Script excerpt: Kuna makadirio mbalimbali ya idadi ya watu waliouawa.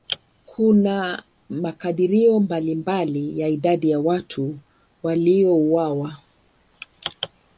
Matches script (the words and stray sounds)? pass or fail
pass